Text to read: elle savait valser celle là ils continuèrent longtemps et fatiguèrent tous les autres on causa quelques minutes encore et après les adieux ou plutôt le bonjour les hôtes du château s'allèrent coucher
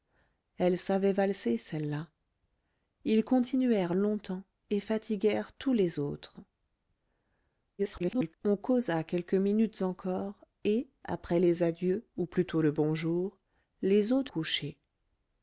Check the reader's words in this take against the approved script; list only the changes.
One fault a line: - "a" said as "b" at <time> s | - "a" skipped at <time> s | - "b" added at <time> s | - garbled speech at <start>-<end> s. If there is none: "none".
- garbled speech at 7.8-8.3 s
- "du château s'allèrent" skipped at 14.3 s